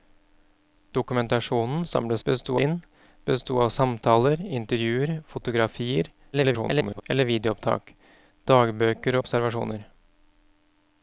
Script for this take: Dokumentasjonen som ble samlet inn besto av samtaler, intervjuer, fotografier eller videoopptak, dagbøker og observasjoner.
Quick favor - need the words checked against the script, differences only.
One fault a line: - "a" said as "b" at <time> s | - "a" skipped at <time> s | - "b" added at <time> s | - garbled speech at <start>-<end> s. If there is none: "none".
- "samlet" said as "besto" at 2.3 s
- garbled speech at 6.3-7.0 s
- "og" skipped at 9.2 s